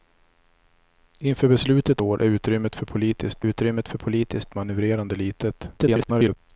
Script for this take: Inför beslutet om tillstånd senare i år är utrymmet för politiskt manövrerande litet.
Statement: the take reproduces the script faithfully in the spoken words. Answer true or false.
false